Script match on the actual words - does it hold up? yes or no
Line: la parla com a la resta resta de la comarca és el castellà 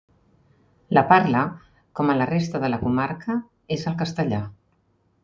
no